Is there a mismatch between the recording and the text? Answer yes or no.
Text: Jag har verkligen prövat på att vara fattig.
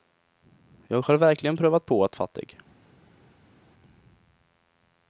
yes